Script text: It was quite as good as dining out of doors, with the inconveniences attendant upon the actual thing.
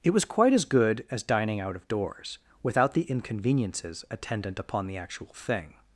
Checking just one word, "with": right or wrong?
wrong